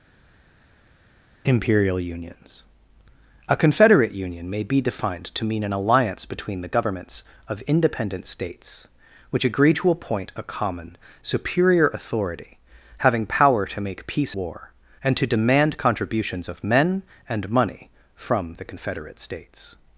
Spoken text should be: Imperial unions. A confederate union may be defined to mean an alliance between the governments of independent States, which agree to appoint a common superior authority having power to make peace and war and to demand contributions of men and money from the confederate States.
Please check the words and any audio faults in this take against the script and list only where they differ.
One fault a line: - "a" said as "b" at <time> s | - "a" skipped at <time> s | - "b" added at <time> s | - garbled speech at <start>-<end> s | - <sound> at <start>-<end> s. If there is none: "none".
- "and" skipped at 14.3 s